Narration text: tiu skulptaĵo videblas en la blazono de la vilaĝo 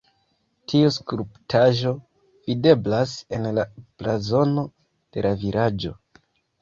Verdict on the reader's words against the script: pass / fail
pass